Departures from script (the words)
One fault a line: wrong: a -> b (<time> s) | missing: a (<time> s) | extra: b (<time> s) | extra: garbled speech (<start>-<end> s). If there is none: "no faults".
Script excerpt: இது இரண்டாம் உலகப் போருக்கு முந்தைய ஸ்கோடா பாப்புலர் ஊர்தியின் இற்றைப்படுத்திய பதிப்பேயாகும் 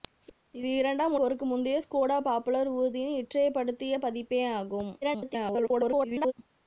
missing: உலகப் (1.1 s)
extra: garbled speech (5.0-6.3 s)